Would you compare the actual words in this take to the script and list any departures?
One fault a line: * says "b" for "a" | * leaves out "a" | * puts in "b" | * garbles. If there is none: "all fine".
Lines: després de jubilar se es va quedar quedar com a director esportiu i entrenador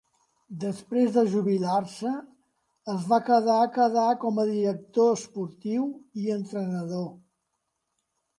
all fine